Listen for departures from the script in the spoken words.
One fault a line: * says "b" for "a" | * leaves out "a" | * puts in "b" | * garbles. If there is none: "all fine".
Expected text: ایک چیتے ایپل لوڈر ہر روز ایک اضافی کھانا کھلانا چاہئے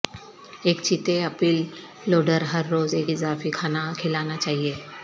all fine